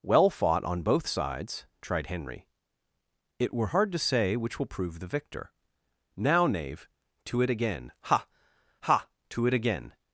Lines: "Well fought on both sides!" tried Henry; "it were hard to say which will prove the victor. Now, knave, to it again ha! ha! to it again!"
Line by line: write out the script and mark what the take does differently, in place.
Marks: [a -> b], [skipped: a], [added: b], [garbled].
"Well fought on both sides!" tried Henry; "it were hard to say which will prove the victor. Now, knave, to it again ha! ha! to it again!"